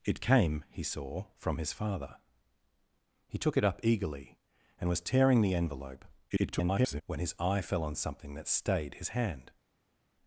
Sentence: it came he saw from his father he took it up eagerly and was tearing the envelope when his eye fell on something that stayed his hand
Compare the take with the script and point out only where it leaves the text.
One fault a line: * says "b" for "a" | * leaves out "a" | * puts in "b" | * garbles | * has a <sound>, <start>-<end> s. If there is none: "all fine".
* garbles